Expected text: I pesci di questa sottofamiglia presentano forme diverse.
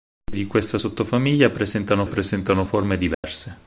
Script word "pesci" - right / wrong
wrong